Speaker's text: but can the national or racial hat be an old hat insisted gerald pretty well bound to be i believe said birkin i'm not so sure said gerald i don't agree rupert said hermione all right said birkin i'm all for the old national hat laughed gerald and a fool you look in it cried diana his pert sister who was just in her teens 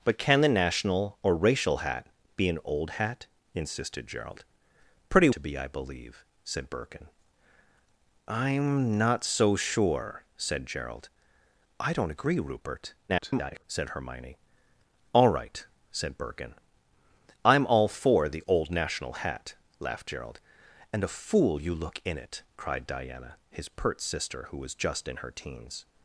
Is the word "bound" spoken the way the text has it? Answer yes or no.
no